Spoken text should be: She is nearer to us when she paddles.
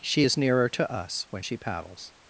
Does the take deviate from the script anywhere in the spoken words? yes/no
no